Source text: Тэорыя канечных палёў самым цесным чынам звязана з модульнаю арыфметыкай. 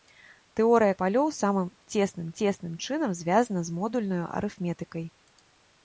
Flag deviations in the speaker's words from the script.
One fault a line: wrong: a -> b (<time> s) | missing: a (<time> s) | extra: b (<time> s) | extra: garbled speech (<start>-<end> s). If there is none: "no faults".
missing: канечных (0.9 s)
extra: цесным (2.4 s)